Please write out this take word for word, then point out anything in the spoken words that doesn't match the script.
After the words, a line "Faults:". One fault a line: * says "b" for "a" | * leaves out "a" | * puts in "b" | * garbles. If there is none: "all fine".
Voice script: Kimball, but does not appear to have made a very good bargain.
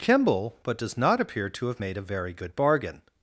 Kimball, but does not appear to have made a very good bargain.
Faults:
all fine